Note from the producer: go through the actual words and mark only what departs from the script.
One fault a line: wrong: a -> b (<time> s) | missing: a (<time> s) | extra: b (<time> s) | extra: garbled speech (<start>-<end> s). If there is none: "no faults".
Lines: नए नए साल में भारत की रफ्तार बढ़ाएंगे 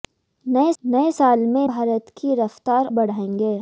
no faults